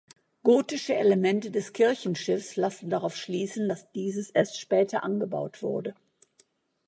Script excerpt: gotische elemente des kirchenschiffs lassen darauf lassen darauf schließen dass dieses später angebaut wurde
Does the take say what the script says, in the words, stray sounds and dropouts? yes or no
no